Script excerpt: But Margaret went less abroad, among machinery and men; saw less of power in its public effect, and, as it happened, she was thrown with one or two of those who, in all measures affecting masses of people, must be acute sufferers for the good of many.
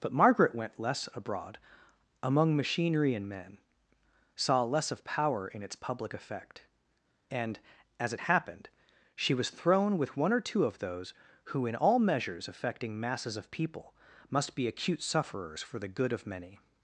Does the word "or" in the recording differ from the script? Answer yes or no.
no